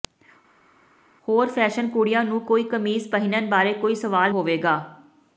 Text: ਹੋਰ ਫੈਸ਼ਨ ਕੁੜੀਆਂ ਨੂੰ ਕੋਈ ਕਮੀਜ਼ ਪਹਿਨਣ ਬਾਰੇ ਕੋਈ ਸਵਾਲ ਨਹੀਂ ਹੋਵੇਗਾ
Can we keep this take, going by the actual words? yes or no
no